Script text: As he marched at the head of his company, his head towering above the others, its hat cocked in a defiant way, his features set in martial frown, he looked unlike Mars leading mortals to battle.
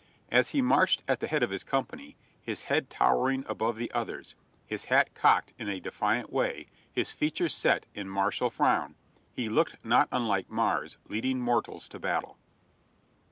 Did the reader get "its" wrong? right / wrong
wrong